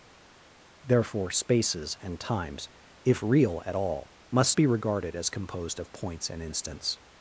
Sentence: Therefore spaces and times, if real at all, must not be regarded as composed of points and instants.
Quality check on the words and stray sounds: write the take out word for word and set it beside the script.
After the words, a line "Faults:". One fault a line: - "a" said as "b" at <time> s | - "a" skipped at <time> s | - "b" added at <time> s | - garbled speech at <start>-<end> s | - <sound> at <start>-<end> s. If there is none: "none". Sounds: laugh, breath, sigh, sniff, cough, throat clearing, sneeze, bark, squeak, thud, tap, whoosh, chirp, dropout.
Therefore spaces and times, if real at all, must be regarded as composed of points and instants.
Faults:
- "not" skipped at 4.6 s